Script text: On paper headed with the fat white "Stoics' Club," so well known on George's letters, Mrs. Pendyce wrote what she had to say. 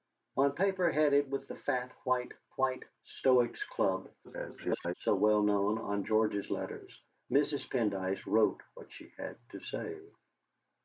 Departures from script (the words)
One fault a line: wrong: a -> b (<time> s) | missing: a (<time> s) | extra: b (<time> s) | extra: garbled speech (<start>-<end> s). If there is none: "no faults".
extra: white (2.6 s)
extra: garbled speech (4.2-4.9 s)